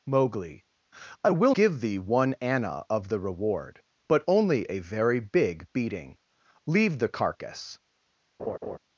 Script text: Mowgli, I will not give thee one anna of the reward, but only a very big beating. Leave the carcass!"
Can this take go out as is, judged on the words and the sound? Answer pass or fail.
fail